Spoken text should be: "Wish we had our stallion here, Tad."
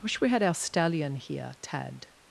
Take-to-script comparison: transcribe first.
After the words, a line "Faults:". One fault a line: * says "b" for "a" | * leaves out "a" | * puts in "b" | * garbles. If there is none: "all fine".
"Wish we had our stallion here, Tad."
Faults:
all fine